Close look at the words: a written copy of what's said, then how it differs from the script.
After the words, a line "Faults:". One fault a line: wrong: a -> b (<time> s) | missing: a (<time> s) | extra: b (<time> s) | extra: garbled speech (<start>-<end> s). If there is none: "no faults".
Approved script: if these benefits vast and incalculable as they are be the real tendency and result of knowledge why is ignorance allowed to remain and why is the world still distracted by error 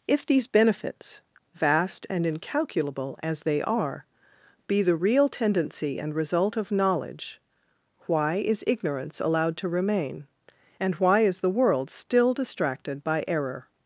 if these benefits vast and incalculable as they are be the real tendency and result of knowledge why is ignorance allowed to remain and why is the world still distracted by error
Faults:
no faults